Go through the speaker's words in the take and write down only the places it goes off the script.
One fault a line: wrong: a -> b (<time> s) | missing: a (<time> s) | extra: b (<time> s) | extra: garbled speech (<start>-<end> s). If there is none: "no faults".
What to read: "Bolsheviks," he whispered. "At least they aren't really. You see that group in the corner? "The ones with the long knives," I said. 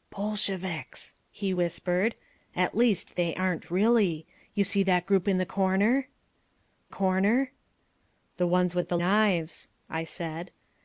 extra: corner (6.9 s)
missing: long (9.0 s)